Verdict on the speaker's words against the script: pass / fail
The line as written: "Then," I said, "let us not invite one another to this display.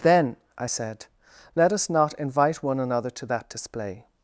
fail